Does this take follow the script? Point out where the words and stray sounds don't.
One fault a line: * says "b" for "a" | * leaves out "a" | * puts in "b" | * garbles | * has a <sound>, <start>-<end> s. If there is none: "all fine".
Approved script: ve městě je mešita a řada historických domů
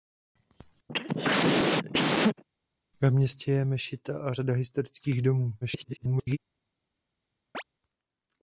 * has a cough, 0.9-2.4 s
* garbles
* has a chirp, 7.5-7.6 s